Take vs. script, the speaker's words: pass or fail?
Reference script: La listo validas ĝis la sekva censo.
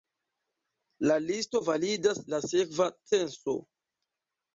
fail